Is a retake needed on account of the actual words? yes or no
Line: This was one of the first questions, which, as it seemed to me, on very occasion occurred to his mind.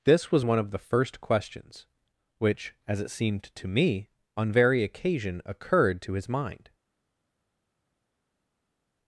no